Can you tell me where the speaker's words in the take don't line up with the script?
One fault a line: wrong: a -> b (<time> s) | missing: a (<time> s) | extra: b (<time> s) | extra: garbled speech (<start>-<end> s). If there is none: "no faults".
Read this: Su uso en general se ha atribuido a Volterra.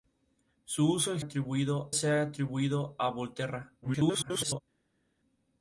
wrong: general -> atribuido (1.2 s)
extra: garbled speech (3.8-4.6 s)